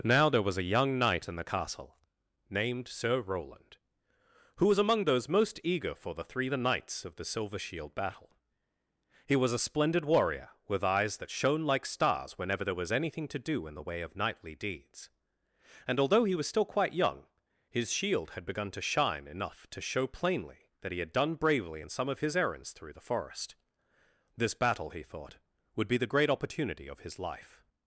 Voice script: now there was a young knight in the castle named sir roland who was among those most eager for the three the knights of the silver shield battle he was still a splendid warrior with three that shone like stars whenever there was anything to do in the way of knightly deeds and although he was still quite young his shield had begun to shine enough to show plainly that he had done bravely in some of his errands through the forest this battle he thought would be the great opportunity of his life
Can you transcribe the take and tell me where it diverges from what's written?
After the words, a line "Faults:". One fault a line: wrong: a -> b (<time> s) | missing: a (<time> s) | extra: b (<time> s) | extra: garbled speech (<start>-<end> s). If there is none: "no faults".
now there was a young knight in the castle named sir roland who was among those most eager for the three the knights of the silver shield battle he was a splendid warrior with eyes that shone like stars whenever there was anything to do in the way of knightly deeds and although he was still quite young his shield had begun to shine enough to show plainly that he had done bravely in some of his errands through the forest this battle he thought would be the great opportunity of his life
Faults:
missing: still (9.5 s)
wrong: three -> eyes (10.8 s)